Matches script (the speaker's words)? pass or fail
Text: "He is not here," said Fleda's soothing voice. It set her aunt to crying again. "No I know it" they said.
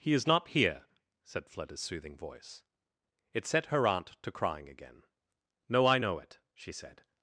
fail